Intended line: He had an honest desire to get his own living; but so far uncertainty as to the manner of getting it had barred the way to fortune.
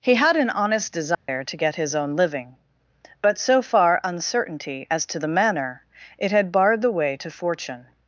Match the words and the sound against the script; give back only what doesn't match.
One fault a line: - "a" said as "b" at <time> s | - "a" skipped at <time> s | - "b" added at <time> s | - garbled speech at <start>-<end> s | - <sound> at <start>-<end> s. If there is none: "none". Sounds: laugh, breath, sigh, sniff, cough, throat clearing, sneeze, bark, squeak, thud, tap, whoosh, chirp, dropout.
- dropout at 1.1-1.3 s
- "of getting" skipped at 5.8 s